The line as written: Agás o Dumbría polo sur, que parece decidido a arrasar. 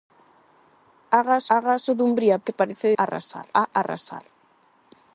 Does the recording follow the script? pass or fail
fail